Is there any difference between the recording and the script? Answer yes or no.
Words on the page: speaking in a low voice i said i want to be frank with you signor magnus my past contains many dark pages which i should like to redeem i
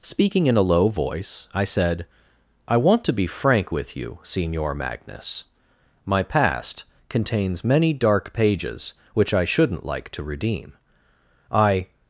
yes